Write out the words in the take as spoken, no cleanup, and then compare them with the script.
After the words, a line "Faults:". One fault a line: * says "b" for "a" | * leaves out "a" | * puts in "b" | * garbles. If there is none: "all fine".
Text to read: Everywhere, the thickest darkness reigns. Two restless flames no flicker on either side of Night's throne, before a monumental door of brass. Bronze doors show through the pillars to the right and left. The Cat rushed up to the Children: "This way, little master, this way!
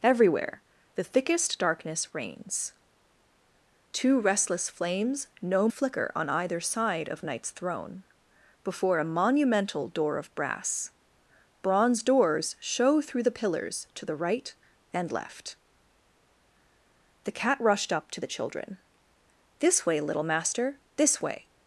Everywhere, the thickest darkness reigns. Two restless flames no flicker on either side of Night's throne, before a monumental door of brass. Bronze doors show through the pillars to the right and left. The Cat rushed up to the Children: "This way, little master, this way!
Faults:
all fine